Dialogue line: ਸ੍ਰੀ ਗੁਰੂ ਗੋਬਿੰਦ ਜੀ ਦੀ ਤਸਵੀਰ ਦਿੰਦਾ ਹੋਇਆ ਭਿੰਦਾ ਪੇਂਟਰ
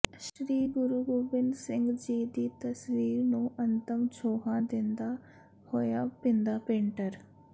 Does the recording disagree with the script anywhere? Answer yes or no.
yes